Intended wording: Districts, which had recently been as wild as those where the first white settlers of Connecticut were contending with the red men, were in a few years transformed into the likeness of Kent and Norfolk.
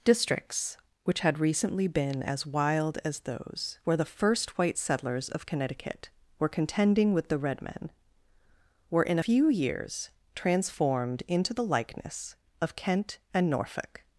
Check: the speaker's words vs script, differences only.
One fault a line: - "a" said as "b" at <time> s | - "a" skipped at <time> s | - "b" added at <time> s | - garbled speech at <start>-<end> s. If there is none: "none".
- "a" skipped at 9.2 s